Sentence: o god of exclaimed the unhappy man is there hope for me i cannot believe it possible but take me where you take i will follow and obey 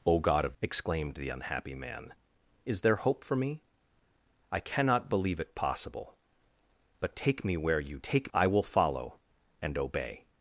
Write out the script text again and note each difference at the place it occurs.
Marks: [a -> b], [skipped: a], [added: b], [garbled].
o god of exclaimed the unhappy man is there hope for me i cannot believe it possible but take me where you take i will follow and obey